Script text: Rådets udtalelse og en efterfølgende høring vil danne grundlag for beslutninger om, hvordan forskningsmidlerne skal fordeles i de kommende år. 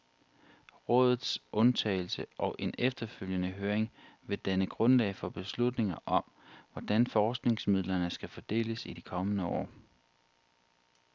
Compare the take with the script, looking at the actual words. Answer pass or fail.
pass